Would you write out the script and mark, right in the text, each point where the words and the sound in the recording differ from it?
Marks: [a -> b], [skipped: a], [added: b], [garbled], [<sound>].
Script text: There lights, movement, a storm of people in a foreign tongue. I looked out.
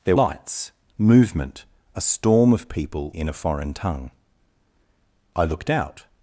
There lights, movement, a storm of people in a foreign tongue. I looked out.